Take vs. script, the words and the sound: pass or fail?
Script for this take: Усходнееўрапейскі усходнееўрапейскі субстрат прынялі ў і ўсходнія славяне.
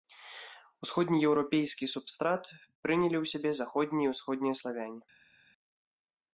fail